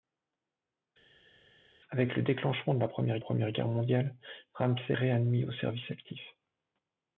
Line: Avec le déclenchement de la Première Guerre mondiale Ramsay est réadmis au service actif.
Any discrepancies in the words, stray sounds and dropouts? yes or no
yes